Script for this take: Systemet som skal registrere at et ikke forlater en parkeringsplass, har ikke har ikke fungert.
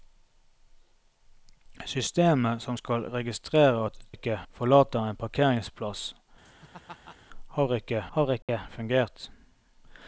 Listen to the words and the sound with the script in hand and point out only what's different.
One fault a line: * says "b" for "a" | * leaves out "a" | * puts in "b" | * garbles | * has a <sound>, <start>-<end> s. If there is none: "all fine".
* has a laugh, 6.4-7.2 s
* has a dropout, 8.4-8.5 s